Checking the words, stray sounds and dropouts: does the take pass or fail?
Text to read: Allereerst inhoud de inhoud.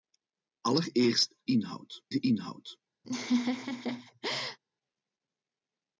fail